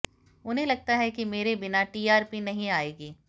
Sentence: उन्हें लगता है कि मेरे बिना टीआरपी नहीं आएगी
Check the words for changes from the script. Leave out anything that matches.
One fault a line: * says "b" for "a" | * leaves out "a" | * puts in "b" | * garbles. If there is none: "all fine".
all fine